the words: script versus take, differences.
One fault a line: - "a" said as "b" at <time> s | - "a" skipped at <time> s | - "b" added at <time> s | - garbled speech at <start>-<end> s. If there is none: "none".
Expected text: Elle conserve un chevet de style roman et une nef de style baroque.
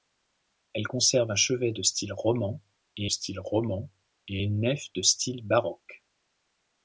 - "style roman et" added at 3.1 s